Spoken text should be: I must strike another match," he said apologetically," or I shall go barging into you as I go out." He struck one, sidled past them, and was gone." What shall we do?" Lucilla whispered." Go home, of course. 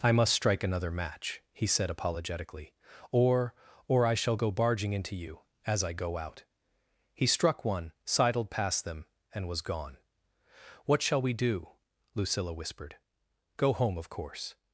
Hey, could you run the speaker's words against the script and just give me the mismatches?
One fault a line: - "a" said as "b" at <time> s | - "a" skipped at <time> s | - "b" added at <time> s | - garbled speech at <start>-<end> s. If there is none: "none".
- "or" added at 3.9 s